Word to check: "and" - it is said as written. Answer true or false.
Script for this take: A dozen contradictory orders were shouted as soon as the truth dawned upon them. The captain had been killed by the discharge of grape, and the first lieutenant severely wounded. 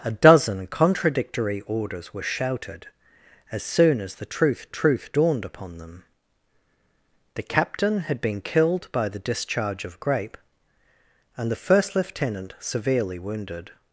true